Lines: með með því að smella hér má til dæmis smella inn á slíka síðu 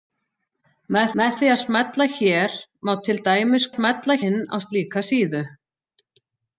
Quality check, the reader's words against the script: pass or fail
pass